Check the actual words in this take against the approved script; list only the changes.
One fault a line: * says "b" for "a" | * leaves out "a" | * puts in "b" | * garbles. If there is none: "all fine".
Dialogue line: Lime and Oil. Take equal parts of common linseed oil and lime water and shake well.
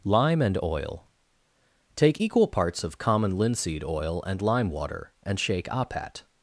* says "apat" for "well"